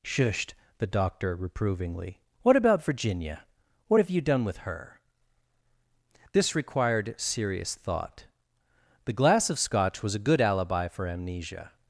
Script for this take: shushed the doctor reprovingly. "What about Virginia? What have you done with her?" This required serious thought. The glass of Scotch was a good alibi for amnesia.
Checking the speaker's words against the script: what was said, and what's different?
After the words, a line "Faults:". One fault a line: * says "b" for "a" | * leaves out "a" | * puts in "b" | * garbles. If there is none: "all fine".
shushed the doctor reprovingly. "What about Virginia? What have you done with her?" This required serious thought. The glass of Scotch was a good alibi for amnesia.
Faults:
all fine